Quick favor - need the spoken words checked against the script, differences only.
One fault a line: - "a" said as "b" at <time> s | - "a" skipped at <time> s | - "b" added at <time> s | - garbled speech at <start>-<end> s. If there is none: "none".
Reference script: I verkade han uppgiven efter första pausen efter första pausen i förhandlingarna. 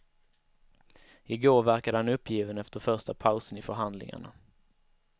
- "går" added at 1.4 s
- "efter första pausen" skipped at 3.6 s